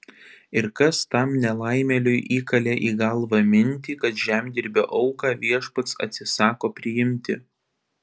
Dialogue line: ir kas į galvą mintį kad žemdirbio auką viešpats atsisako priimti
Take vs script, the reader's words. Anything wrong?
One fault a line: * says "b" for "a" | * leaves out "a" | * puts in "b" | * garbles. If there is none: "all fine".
* puts in "tam nelaimėliui įkalė"